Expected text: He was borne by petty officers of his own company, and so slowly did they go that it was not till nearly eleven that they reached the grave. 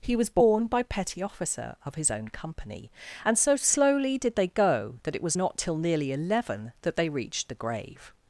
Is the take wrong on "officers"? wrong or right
wrong